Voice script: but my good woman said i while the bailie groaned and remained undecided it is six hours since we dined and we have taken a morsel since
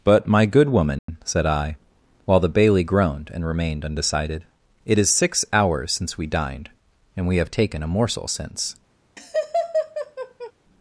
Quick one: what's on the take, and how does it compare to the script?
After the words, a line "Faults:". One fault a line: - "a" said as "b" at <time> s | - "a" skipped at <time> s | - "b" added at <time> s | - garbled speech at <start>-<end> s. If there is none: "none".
but my good woman said i while the bailie groaned and remained undecided it is six hours since we dined and we have taken a morsel since
Faults:
none